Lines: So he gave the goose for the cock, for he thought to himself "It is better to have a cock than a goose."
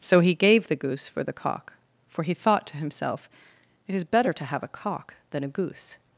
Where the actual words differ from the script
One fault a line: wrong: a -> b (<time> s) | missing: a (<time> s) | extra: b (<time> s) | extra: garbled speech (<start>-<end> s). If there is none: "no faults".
no faults